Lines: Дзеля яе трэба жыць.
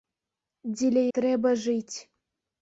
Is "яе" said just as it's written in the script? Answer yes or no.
no